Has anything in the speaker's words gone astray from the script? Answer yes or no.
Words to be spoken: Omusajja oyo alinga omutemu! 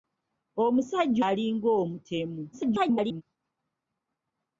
yes